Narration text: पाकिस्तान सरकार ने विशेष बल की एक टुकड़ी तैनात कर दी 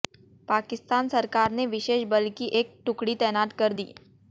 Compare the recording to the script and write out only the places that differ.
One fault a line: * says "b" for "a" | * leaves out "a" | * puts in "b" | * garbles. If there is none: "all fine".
all fine